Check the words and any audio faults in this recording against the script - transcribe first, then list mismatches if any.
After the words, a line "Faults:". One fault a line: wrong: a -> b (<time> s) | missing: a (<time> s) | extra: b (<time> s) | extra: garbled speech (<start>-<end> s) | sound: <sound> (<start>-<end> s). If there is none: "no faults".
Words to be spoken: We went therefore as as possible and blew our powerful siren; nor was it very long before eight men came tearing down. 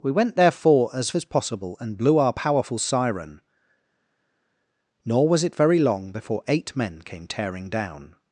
We went therefore as as possible and blew our powerful siren; nor was it very long before eight men came tearing down.
Faults:
no faults